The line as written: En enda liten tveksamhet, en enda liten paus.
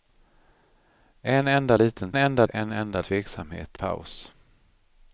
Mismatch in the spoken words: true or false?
true